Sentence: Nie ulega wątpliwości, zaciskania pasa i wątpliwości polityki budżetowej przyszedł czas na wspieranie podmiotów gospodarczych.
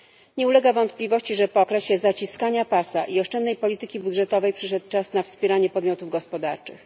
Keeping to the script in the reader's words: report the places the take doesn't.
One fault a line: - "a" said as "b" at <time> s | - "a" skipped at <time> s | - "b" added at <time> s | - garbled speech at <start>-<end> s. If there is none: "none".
- "że po okresie" added at 1.4 s
- "wątpliwości" said as "oszczędnej" at 3.2 s